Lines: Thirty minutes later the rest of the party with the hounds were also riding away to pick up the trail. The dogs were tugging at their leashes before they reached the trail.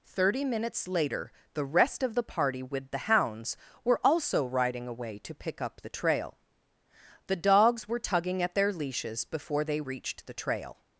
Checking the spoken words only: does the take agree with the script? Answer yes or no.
yes